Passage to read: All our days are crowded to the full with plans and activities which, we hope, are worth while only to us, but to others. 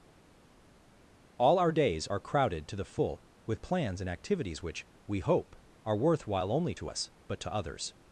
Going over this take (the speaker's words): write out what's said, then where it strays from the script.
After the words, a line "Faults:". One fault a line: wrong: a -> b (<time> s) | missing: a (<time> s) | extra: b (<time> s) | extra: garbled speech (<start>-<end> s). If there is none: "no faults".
All our days are crowded to the full with plans and activities which, we hope, are worth while only to us, but to others.
Faults:
no faults